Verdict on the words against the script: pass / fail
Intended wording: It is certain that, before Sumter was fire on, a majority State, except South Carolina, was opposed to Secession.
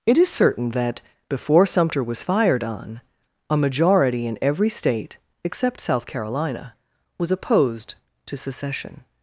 fail